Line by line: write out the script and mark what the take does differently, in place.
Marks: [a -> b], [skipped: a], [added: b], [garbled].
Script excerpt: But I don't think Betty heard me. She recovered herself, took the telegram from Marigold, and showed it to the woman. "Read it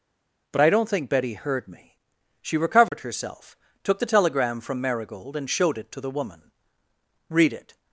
But I don't think Betty heard me. She recovered herself, took the telegram from Marigold, and showed it to the woman. "Read it